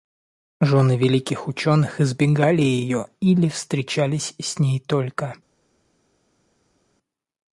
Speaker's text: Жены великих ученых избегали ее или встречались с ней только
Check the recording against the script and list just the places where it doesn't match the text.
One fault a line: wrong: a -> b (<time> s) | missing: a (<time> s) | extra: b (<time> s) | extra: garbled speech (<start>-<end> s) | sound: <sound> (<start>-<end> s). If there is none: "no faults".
no faults